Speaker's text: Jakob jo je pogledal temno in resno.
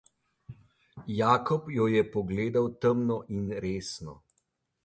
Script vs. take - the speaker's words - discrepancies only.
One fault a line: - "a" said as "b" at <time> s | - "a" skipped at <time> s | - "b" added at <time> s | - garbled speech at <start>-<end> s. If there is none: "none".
none